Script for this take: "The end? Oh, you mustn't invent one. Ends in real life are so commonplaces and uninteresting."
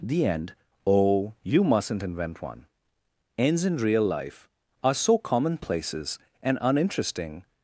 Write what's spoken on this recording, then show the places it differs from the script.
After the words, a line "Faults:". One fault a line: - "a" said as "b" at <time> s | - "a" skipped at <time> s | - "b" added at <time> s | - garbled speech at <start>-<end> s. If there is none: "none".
"The end? Oh, you mustn't invent one. Ends in real life are so commonplaces and uninteresting."
Faults:
none